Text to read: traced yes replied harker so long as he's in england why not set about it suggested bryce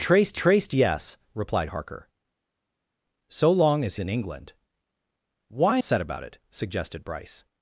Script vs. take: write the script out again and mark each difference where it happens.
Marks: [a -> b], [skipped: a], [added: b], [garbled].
traced [added: traced] yes replied harker so long as [skipped: he's] in england why [skipped: not] set about it suggested bryce